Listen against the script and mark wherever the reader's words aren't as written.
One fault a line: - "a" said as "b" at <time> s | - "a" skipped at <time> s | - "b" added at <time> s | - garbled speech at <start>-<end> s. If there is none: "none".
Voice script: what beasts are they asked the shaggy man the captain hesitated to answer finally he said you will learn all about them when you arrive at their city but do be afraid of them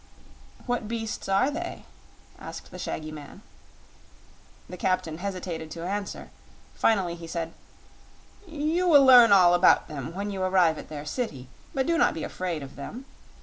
- "not" added at 12.0 s